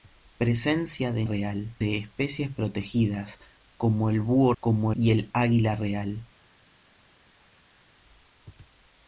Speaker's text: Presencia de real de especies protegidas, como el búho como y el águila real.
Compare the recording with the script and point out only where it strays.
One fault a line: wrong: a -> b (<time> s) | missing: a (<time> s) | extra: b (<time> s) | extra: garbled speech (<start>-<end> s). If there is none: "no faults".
no faults